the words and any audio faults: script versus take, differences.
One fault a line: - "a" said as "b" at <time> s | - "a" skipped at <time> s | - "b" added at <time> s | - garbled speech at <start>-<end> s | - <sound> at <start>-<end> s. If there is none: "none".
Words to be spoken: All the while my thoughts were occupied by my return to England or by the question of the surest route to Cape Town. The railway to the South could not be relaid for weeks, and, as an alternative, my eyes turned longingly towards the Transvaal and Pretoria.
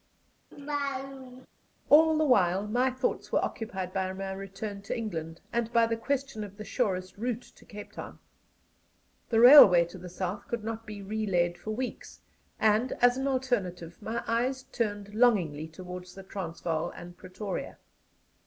- laugh at 0.5-1.5 s
- "or" said as "and" at 5.5 s